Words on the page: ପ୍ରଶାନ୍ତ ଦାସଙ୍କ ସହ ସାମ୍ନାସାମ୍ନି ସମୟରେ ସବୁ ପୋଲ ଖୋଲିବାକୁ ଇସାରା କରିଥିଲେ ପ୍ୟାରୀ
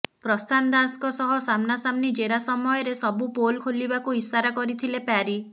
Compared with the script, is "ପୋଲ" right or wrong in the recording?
right